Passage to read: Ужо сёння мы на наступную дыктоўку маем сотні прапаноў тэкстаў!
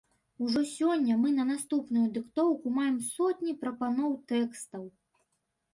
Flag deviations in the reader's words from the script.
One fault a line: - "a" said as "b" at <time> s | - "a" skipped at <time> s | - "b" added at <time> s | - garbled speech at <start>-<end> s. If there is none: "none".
none